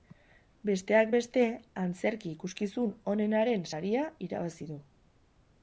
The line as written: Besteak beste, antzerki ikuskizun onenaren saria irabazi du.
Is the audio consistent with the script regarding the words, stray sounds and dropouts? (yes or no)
yes